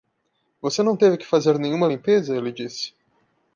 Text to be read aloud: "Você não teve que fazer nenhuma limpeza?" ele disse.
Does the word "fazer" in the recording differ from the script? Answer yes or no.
no